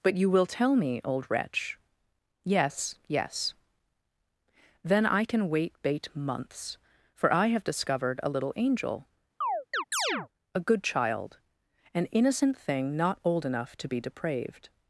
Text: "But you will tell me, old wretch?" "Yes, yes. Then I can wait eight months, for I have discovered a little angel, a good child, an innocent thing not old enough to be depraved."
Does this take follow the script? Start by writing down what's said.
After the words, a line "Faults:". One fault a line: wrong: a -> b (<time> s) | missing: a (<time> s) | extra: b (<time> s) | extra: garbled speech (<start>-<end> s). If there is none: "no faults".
"But you will tell me, old wretch?" "Yes, yes. Then I can wait bait months, for I have discovered a little angel, a good child, an innocent thing not old enough to be depraved."
Faults:
wrong: eight -> bait (5.8 s)